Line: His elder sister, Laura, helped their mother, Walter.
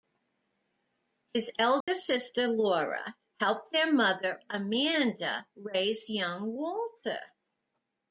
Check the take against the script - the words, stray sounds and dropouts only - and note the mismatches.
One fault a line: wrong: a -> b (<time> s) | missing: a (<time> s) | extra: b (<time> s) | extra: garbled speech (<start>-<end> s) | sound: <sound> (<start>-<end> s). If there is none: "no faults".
sound: dropout (1.8-1.9 s)
extra: Amanda raise young (4.5 s)